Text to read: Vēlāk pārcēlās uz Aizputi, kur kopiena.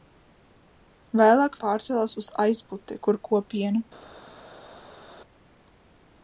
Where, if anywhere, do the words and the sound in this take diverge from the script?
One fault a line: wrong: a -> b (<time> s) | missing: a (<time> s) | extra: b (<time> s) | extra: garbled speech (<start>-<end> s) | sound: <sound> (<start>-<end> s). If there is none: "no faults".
no faults